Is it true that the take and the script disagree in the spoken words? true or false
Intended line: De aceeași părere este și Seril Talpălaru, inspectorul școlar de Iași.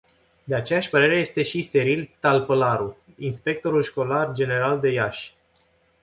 true